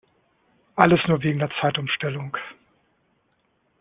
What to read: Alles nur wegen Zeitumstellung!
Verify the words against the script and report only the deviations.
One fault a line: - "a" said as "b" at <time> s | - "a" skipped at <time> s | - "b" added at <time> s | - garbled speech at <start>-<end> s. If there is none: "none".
- "der" added at 1.4 s